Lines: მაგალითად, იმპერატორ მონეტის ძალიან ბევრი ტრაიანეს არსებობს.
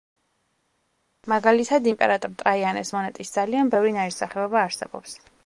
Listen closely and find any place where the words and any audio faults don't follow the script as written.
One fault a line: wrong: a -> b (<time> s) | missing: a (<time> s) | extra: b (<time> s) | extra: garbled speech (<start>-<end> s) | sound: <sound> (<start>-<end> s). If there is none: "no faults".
extra: ტრაიანეს (2.4 s)
wrong: ტრაიანეს -> ნაირსახეობა (4.0 s)